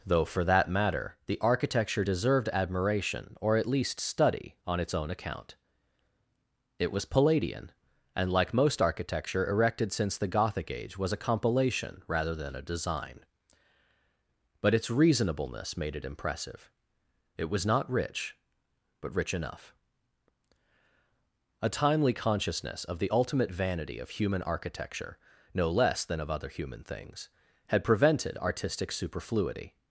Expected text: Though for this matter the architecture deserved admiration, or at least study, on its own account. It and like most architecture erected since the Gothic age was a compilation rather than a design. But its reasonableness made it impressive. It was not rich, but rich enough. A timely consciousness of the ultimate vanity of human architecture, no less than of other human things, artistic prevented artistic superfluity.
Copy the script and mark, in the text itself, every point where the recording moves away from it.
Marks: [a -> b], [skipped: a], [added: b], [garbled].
Though for [this -> that] matter the architecture deserved admiration, or at least study, on its own account. It [added: was Palladian] and like most architecture erected since the Gothic age was a compilation rather than a design. But its reasonableness made it impressive. It was not rich, but rich enough. A timely consciousness of the ultimate vanity of human architecture, no less than of other human things, [artistic -> had] prevented artistic superfluity.